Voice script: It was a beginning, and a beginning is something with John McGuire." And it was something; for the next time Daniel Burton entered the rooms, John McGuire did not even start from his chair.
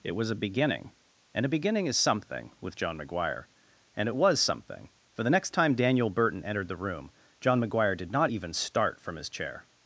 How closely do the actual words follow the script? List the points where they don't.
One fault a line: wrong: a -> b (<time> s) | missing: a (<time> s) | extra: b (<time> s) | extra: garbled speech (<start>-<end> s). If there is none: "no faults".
wrong: rooms -> room (6.8 s)